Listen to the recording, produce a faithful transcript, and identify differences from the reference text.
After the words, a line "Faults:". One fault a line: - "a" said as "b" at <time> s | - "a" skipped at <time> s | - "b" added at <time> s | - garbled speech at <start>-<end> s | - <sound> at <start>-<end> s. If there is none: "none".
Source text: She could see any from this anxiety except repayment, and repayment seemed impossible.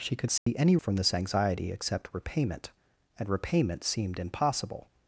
She could see any from this anxiety except repayment, and repayment seemed impossible.
Faults:
- dropout at 0.4-0.5 s